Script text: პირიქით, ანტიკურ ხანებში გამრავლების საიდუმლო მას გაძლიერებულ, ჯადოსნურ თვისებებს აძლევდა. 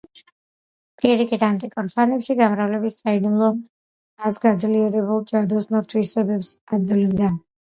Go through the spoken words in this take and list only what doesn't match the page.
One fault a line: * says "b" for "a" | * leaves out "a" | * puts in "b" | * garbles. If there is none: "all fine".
all fine